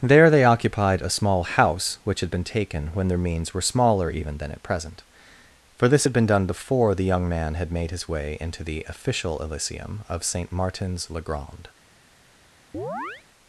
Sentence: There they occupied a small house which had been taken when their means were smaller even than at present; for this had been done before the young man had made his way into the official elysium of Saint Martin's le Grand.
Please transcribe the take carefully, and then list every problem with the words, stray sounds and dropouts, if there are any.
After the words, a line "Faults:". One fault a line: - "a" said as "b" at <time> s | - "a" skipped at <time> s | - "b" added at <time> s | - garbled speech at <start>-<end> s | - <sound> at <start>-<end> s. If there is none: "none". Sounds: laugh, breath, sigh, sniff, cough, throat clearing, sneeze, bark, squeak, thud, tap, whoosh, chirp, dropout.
There they occupied a small house which had been taken when their means were smaller even than at present; for this had been done before the young man had made his way into the official elysium of Saint Martin's le Grand.
Faults:
- chirp at 12.7-13.2 s